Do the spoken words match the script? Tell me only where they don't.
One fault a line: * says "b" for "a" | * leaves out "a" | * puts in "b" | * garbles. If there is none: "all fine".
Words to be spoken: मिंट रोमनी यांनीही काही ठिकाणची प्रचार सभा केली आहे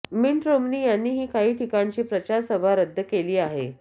* puts in "रद्द"